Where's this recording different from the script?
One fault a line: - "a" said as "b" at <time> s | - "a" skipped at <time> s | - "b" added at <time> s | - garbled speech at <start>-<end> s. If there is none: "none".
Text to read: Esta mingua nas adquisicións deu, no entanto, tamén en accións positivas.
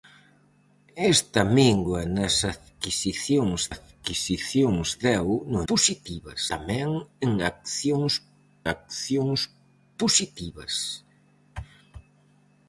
- "adquisicións" added at 3.7 s
- "entanto" said as "positivas" at 5.7 s
- "accións" added at 8.7 s